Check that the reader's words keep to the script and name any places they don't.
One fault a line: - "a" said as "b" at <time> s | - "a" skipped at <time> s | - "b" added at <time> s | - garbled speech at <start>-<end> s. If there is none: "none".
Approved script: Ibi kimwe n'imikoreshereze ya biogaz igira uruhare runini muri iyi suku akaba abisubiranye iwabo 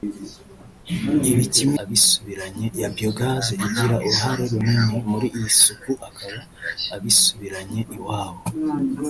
- "n'imikoreshereze" said as "abisubiranye" at 1.8 s